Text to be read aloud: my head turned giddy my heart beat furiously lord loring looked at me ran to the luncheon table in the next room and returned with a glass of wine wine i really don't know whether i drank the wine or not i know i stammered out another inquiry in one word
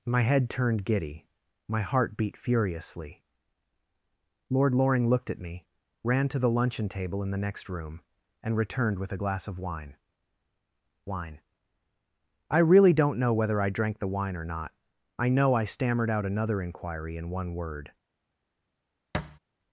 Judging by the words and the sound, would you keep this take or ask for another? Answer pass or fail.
fail